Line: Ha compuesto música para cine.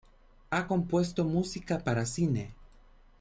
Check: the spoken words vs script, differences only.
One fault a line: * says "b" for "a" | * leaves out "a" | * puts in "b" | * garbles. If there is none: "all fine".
all fine